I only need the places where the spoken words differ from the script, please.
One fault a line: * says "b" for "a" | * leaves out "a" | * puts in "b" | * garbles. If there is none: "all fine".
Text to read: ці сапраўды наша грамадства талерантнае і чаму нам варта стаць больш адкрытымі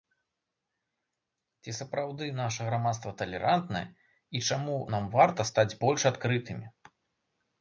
all fine